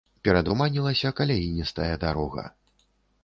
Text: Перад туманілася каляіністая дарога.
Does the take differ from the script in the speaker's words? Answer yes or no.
no